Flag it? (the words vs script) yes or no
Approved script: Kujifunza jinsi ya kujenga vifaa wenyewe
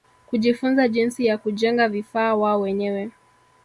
yes